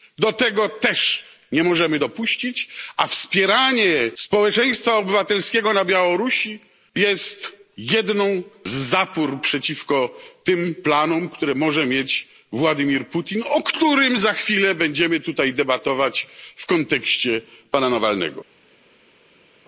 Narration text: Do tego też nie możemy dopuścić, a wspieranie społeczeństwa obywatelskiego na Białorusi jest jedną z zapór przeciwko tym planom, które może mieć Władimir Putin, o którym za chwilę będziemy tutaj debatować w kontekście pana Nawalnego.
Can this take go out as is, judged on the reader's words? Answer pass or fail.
pass